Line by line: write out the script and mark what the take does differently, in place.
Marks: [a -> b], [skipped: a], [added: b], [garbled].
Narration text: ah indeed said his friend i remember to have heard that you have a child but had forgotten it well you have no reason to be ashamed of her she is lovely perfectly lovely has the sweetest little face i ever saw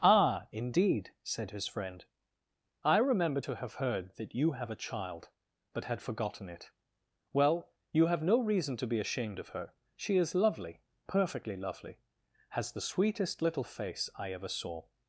ah indeed said his friend i remember to have heard that you have a child but had forgotten it well you have no reason to be ashamed of her she is lovely perfectly lovely has the sweetest little face i ever saw